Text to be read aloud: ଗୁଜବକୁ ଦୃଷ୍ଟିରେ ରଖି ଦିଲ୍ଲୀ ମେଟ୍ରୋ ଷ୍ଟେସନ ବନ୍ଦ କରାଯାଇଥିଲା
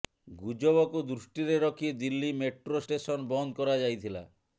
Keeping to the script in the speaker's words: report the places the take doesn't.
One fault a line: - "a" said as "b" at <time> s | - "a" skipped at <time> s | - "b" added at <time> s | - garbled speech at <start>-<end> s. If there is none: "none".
none